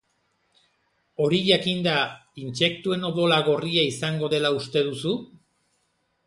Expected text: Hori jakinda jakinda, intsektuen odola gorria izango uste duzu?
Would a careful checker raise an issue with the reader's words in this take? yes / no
yes